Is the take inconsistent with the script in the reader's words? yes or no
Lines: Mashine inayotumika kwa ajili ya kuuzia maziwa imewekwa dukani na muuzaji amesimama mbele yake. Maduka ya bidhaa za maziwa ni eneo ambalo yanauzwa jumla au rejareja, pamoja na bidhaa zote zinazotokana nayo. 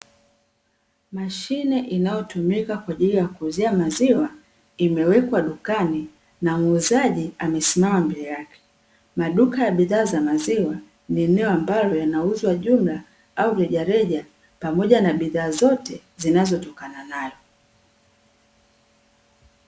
no